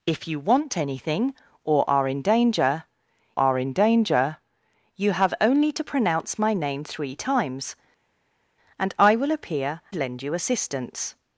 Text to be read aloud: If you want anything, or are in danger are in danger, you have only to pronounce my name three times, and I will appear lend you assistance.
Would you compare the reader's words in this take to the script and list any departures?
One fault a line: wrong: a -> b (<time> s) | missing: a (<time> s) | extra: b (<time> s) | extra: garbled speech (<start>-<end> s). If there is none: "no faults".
no faults